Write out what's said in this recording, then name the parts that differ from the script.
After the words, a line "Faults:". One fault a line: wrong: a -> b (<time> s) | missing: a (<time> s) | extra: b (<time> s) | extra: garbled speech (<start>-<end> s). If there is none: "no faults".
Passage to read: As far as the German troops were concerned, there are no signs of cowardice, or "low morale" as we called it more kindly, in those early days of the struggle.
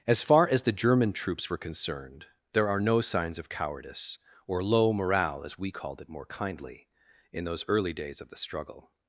As far as the German troops were concerned, there are no signs of cowardice, or "low morale" as we called it more kindly, in those early days of the struggle.
Faults:
no faults